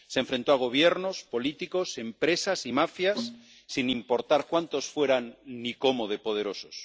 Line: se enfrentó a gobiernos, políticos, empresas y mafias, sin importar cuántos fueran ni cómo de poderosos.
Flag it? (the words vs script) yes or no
no